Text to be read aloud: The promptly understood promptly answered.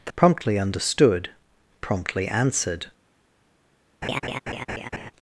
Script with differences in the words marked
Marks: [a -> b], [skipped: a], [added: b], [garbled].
The promptly understood promptly answered.